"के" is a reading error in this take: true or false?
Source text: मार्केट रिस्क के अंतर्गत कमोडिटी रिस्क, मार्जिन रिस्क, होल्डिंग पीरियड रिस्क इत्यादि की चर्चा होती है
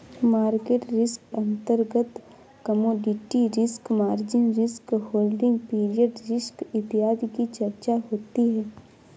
true